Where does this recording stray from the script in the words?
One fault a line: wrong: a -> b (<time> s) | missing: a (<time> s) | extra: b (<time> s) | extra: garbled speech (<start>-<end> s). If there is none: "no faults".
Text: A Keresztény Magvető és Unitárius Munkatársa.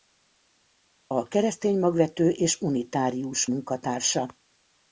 no faults